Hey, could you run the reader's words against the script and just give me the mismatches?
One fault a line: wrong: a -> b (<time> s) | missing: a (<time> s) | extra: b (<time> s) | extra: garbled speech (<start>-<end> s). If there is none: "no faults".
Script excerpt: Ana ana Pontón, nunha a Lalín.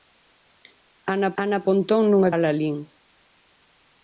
no faults